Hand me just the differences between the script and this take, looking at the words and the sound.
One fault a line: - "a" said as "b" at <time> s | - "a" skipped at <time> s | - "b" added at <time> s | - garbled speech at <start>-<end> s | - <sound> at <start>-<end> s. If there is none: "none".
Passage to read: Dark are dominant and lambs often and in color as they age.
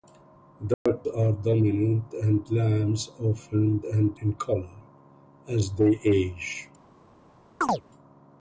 - dropout at 0.7-0.9 s
- chirp at 7.6-7.8 s